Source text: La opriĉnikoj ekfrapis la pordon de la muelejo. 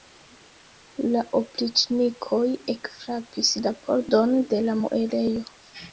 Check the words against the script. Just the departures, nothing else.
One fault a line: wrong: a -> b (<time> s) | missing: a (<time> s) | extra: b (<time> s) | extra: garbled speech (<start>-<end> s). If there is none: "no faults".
no faults